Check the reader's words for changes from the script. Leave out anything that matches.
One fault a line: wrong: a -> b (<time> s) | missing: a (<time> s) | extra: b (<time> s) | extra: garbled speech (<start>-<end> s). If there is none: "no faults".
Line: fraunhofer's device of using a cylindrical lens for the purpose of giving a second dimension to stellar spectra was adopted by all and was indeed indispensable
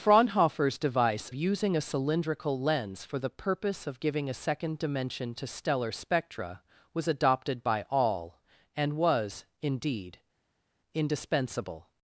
missing: of (1.3 s)